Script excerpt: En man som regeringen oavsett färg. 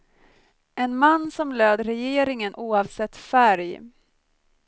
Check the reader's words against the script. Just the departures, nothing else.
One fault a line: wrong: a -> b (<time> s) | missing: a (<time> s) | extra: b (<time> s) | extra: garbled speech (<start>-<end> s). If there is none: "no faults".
extra: löd (1.5 s)